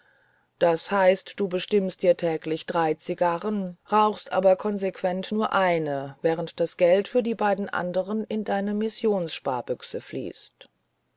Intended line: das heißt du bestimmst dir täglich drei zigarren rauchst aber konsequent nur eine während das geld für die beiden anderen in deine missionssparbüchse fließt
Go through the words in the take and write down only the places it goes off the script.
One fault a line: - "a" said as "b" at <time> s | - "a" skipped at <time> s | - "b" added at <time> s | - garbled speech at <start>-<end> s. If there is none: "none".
none